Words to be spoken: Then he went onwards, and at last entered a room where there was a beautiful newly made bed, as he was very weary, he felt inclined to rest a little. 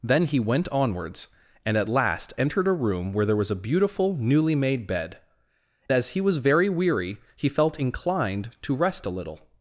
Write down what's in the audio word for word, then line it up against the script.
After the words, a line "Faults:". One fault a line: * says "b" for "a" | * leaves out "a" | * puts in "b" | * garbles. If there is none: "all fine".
Then he went onwards, and at last entered a room where there was a beautiful newly made bed, as he was very weary, he felt inclined to rest a little.
Faults:
all fine